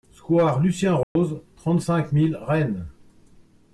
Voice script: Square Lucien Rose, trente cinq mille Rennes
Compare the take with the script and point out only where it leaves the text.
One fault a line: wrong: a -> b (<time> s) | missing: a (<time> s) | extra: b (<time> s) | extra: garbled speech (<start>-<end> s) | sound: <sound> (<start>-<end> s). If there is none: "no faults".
sound: dropout (1.0-1.2 s)